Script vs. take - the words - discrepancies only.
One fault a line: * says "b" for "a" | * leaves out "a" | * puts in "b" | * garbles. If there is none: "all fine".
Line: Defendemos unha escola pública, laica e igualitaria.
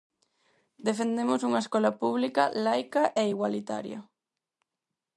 all fine